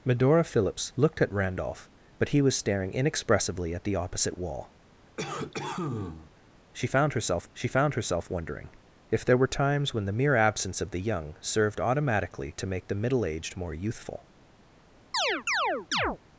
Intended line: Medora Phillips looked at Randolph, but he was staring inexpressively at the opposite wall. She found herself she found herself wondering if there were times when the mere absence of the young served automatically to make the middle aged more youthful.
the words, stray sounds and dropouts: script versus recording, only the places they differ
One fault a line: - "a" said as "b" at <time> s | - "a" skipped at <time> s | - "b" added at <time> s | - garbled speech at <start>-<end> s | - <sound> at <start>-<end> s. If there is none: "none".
- cough at 5.2-6.3 s
- chirp at 15.1-16.2 s